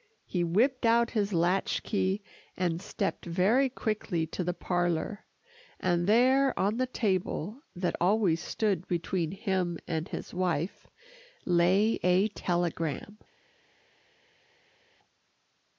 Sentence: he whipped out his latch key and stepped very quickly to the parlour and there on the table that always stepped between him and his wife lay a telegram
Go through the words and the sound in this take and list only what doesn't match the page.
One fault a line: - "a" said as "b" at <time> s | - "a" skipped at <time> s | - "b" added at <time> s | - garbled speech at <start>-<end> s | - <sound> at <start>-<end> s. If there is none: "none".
- "stepped" said as "stood" at 8.4 s